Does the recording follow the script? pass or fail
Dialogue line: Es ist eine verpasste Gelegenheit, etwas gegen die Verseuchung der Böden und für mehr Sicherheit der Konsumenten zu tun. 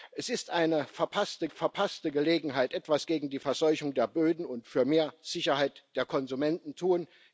fail